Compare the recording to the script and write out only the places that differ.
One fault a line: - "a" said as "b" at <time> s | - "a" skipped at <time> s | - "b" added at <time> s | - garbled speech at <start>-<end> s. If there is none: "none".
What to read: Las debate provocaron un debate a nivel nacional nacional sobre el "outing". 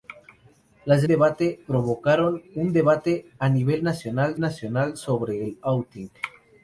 none